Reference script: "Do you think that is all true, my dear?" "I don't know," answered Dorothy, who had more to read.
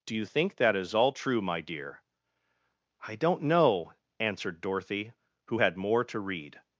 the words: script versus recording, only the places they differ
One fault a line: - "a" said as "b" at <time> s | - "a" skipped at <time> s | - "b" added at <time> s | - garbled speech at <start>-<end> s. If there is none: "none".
none